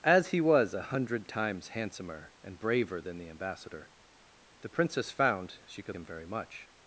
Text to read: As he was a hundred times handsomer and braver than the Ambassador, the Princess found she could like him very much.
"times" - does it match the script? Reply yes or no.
yes